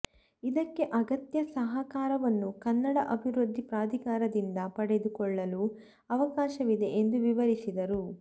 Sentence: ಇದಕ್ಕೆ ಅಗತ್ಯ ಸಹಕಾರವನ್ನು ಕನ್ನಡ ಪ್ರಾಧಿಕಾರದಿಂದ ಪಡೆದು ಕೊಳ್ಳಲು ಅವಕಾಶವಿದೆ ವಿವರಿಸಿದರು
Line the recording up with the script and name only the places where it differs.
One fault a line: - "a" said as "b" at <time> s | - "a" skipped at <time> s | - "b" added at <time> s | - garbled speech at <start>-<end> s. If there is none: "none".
- "ಅಭಿವೃದ್ಧಿ" added at 3.1 s
- "ಎಂದು" added at 7.0 s